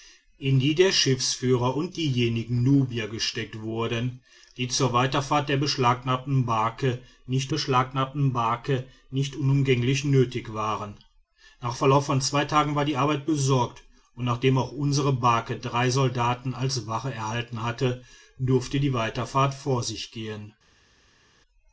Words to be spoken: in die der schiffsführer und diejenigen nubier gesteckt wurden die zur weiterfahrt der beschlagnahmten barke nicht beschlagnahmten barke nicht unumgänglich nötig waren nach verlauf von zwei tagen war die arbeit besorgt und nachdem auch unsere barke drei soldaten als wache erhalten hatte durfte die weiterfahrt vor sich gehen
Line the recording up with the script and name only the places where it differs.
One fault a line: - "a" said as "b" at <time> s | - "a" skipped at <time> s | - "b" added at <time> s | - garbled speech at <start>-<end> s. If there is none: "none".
none